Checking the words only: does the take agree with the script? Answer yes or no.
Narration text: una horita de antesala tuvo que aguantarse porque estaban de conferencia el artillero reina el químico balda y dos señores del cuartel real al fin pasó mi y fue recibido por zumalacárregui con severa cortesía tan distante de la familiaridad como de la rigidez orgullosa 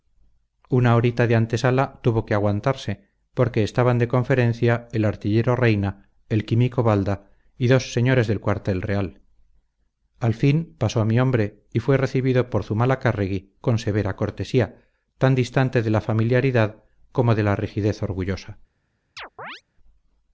no